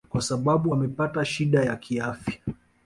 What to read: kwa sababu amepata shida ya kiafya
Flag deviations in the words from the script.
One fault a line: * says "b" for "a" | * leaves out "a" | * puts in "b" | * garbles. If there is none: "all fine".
all fine